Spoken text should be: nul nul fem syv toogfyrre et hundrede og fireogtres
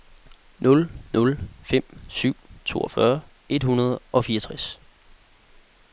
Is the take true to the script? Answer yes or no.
yes